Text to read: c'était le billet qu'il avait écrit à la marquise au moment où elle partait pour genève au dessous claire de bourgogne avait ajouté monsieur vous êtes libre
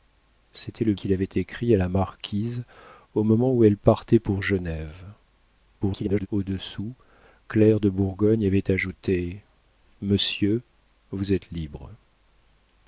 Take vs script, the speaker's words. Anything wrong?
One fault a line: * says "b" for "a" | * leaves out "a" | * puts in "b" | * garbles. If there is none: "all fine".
* leaves out "billet"
* garbles